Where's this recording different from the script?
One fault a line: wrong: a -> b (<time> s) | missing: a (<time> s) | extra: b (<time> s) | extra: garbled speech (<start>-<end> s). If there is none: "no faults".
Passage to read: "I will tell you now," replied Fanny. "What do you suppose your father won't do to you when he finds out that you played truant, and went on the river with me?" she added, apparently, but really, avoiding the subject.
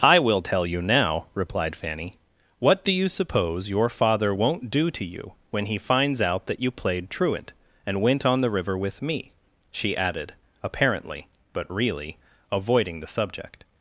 no faults